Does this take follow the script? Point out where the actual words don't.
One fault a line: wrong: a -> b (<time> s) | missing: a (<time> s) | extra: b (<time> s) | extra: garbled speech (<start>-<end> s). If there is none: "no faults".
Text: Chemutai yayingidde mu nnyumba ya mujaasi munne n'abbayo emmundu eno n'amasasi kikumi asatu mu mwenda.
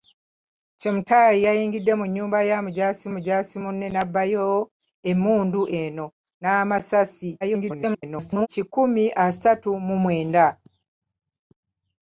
extra: mujaasi (3.1 s)
extra: garbled speech (7.4-8.5 s)